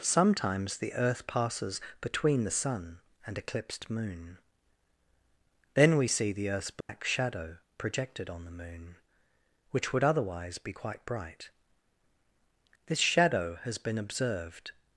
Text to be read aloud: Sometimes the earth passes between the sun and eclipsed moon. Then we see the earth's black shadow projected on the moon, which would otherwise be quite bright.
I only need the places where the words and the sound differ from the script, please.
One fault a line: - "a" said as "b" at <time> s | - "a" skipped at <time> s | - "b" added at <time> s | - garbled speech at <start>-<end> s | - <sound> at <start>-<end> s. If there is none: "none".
- dropout at 6.8-6.9 s
- "This shadow has been observed" added at 12.9 s